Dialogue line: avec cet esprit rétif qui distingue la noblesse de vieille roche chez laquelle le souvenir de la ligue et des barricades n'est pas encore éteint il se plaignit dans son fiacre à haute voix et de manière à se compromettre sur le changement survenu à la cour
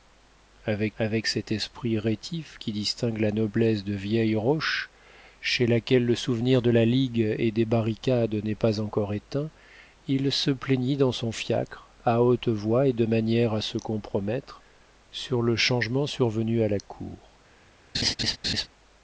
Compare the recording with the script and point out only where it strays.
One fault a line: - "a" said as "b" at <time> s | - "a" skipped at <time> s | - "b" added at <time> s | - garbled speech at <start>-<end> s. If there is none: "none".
- "avec" added at 1.0 s